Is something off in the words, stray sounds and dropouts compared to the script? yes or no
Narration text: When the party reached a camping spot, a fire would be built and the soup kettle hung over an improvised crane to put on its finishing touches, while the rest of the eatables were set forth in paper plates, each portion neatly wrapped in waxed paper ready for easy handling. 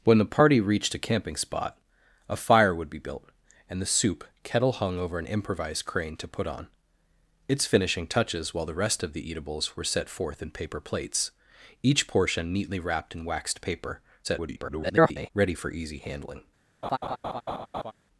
yes